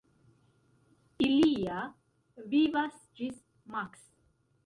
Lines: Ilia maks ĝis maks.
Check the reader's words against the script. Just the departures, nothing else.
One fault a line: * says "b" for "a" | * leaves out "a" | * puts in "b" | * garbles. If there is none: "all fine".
* says "vivas" for "maks"